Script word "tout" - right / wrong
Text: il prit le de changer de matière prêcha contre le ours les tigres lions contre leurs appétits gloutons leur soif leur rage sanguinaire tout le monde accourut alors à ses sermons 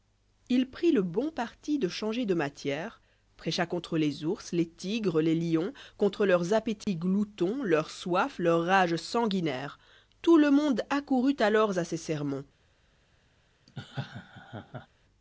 right